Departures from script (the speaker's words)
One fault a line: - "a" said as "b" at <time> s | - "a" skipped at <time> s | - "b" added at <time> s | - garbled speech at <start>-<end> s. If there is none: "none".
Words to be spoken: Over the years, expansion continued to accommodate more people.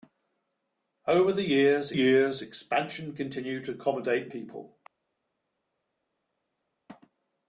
- "years" added at 1.9 s
- "more" skipped at 4.3 s